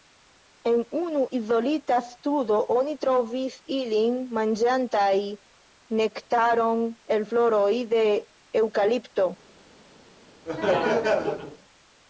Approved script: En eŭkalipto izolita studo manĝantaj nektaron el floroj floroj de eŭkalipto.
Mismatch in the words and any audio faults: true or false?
true